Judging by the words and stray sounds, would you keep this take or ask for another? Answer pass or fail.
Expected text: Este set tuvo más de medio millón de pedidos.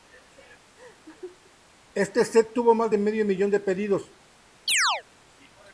fail